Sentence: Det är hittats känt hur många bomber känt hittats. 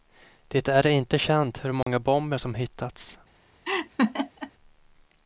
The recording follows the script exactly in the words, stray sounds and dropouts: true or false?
false